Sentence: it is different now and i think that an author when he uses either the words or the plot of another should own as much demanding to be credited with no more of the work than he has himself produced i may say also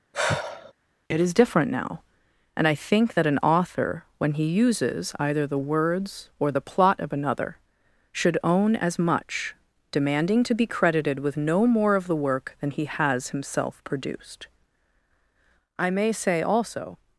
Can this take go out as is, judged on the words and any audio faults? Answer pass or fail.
fail